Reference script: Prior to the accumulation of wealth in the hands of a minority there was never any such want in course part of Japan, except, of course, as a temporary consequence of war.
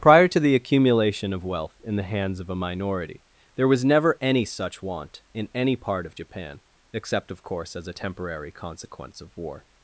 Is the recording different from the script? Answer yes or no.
yes